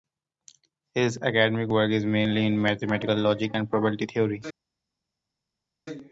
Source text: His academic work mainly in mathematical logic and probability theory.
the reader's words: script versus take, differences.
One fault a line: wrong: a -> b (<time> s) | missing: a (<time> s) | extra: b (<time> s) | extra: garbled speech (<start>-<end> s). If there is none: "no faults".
extra: is (1.9 s)